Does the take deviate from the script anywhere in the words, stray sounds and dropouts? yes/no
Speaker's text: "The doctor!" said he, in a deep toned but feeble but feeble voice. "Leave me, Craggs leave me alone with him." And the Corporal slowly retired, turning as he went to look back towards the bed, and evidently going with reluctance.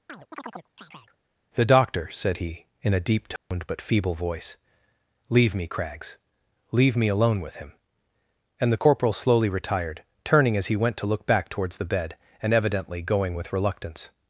yes